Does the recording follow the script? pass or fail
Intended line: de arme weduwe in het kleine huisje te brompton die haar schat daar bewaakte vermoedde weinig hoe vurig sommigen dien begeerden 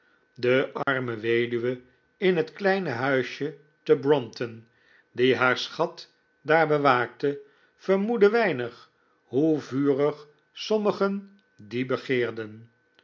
pass